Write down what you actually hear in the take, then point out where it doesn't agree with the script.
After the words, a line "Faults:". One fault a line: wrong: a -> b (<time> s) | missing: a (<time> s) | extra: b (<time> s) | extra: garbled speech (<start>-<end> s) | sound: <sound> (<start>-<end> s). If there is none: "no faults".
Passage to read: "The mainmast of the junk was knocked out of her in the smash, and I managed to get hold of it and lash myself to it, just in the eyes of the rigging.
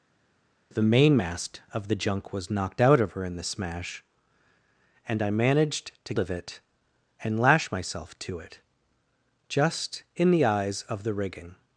"The mainmast of the junk was knocked out of her in the smash, and I managed to of it and lash myself to it, just in the eyes of the rigging.
Faults:
missing: get hold (6.1 s)